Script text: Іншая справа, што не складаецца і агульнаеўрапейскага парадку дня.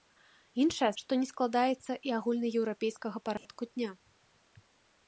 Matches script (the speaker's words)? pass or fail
fail